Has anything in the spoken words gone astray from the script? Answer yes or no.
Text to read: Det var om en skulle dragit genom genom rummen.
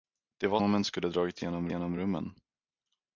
no